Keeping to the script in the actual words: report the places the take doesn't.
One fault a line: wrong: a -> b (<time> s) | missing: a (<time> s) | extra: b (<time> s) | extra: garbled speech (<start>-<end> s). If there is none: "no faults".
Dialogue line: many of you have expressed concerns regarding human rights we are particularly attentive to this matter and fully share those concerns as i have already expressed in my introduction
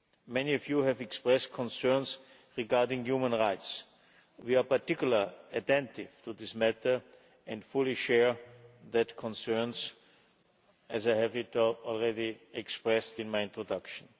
no faults